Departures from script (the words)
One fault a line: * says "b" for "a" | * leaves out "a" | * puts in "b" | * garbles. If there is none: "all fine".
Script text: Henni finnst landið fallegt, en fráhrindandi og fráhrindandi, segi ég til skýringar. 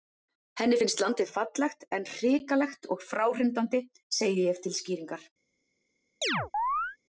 * says "hrikalegt" for "fráhrindandi"